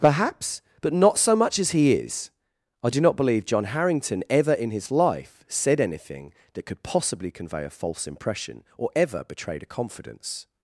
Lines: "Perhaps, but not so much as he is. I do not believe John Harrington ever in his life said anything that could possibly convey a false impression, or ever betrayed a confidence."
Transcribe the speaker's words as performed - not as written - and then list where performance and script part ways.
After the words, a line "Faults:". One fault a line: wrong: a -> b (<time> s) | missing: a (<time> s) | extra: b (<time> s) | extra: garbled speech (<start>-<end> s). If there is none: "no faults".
"Perhaps, but not so much as he is. I do not believe John Harrington ever in his life said anything that could possibly convey a false impression, or ever betrayed a confidence."
Faults:
no faults